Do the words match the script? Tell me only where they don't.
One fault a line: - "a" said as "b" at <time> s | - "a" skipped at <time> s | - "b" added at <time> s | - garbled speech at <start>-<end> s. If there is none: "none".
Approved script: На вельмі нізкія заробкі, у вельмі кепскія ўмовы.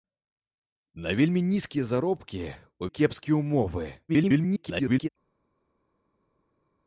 - "вельмі" skipped at 2.9 s
- garbled speech at 4.1-5.1 s